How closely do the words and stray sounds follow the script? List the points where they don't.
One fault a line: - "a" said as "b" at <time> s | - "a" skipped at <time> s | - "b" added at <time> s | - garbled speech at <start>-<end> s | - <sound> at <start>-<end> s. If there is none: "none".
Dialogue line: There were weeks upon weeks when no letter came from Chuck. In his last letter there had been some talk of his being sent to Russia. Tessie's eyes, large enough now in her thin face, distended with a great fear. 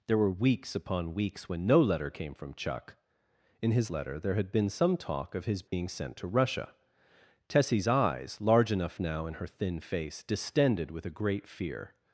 - "last" skipped at 3.9 s
- dropout at 5.7-5.7 s